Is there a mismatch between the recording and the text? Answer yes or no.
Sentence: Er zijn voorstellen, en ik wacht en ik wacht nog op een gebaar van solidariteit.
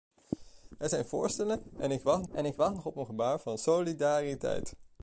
no